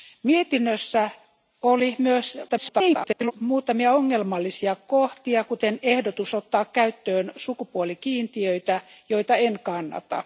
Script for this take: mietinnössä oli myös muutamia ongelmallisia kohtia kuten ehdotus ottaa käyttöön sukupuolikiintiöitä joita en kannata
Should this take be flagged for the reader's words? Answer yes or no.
yes